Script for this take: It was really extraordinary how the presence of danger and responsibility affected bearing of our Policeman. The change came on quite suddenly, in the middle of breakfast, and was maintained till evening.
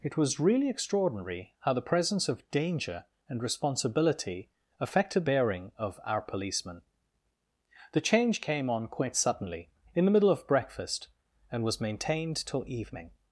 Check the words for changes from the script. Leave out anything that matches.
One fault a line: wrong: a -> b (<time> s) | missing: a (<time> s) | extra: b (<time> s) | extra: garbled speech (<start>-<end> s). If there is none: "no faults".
no faults